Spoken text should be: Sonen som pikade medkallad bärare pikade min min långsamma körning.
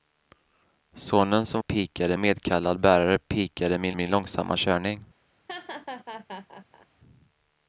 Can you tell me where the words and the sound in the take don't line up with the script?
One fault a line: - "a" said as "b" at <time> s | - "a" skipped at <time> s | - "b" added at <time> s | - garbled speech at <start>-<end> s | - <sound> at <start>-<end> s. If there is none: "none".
- laugh at 5.5-6.9 s